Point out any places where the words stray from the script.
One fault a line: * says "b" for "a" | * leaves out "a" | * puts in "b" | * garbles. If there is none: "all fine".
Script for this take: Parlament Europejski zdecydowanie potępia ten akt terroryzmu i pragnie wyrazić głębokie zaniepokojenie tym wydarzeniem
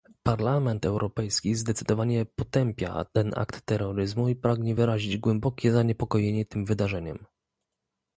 all fine